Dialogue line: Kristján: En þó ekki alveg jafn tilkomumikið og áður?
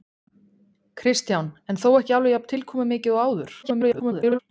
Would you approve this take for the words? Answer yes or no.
no